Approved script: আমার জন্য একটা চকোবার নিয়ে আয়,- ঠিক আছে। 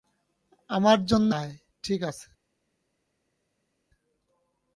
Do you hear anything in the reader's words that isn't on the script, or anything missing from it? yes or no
yes